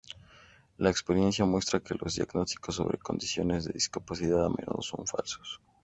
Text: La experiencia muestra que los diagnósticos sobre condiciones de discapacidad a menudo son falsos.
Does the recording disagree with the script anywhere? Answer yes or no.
no